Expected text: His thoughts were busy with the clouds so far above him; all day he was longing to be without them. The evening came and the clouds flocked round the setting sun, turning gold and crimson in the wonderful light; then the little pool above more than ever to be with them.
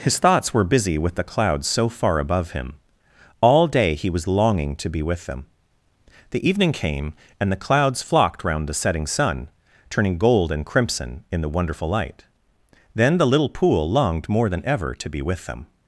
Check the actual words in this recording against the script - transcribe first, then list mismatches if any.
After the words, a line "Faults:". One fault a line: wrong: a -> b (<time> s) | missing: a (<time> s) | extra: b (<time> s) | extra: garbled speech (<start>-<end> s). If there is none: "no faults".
His thoughts were busy with the clouds so far above him; all day he was longing to be with them. The evening came and the clouds flocked round the setting sun, turning gold and crimson in the wonderful light; then the little pool longed more than ever to be with them.
Faults:
wrong: without -> with (5.0 s)
wrong: above -> longed (13.9 s)